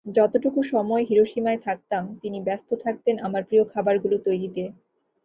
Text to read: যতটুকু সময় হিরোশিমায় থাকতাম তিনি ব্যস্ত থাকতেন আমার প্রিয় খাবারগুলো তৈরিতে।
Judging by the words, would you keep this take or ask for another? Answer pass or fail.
pass